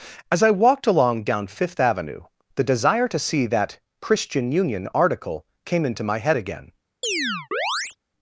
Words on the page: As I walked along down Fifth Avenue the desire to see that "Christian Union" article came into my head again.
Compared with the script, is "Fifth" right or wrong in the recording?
right